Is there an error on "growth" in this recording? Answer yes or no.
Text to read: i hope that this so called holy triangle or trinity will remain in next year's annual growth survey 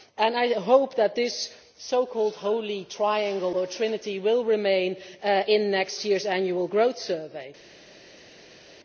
no